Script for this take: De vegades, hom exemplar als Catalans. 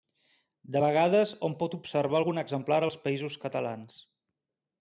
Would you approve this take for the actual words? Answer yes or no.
no